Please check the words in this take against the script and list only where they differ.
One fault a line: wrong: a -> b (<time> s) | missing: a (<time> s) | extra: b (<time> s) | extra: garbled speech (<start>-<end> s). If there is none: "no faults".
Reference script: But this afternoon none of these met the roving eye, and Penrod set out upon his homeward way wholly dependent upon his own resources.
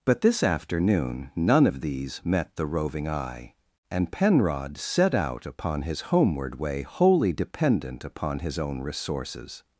no faults